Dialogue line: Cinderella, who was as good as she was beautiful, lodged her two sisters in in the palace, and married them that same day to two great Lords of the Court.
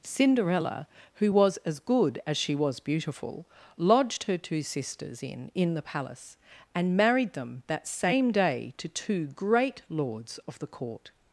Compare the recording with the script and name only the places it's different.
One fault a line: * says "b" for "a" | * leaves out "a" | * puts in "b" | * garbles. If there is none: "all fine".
all fine